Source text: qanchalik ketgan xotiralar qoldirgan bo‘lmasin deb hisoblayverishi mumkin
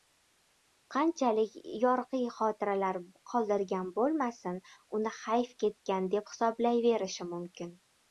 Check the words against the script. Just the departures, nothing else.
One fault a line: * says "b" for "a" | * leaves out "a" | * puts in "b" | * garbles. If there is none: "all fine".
* says "yorqiy" for "ketgan"
* puts in "uni hayf ketgan"